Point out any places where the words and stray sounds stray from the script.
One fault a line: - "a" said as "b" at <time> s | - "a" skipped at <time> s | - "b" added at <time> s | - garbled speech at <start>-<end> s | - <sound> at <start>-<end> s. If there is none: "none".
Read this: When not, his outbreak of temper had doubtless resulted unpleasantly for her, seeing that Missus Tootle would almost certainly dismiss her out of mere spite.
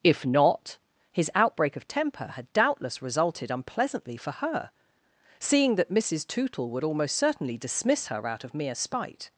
- "When" said as "If" at 0.0 s